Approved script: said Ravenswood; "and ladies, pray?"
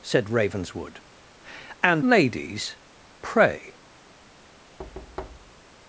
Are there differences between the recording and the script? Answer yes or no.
no